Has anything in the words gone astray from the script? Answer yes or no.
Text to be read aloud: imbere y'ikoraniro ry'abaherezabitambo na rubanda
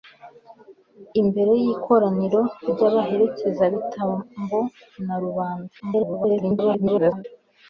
yes